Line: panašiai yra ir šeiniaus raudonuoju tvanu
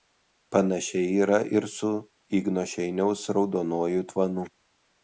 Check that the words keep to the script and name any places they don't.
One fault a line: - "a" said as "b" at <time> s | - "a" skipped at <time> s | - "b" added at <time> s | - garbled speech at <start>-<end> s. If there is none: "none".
- "su igno" added at 1.8 s